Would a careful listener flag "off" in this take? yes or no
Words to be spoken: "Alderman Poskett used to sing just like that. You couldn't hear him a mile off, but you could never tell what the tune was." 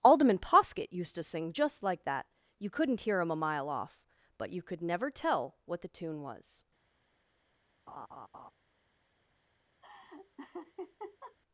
no